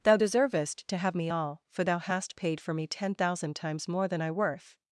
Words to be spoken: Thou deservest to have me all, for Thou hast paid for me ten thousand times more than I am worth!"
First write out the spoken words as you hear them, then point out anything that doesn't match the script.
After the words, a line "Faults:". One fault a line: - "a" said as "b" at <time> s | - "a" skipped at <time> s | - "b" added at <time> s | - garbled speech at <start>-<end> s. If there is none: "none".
Thou deservest to have me all, for Thou hast paid for me ten thousand times more than I worth!"
Faults:
- "am" skipped at 4.3 s